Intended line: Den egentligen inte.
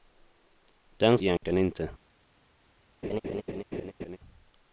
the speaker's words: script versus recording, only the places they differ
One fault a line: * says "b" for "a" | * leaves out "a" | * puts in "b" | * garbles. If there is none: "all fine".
all fine